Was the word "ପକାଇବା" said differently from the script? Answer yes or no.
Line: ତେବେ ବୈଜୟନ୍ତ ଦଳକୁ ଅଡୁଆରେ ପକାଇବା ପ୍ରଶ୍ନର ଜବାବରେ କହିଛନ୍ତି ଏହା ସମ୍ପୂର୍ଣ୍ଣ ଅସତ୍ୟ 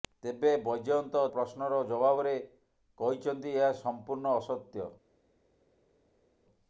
yes